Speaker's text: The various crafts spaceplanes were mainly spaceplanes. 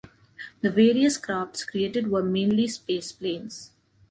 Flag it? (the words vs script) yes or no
yes